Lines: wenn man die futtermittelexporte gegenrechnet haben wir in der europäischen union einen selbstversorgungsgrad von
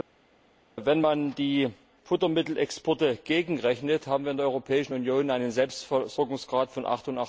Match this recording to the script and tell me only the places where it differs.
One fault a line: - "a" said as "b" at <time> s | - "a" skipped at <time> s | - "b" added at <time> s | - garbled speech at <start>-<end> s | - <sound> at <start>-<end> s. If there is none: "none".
none